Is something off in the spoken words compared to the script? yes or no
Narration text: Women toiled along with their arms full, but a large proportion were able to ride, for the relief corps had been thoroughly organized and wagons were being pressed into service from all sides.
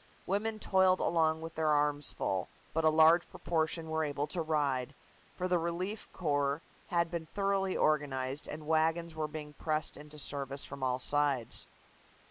no